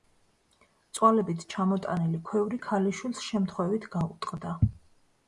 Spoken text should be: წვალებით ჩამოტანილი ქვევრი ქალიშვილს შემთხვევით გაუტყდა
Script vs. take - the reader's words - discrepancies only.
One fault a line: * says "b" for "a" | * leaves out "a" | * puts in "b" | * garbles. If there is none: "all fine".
all fine